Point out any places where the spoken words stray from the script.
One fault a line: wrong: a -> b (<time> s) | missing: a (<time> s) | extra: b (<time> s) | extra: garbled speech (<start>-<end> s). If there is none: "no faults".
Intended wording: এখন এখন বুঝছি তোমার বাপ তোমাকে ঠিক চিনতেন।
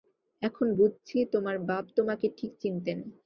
missing: এখন (0.7 s)